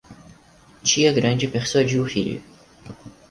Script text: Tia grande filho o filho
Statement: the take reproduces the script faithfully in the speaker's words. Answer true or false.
false